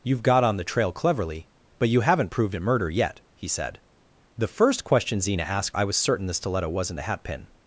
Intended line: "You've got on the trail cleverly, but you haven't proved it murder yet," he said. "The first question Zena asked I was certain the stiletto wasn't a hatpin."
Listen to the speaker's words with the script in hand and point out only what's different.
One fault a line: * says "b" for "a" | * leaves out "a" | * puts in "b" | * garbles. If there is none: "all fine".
all fine